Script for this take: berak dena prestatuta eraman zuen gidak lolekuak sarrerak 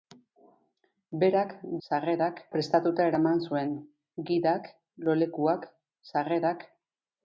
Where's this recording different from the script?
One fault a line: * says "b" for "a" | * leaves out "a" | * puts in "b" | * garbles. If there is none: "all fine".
* says "sarrerak" for "dena"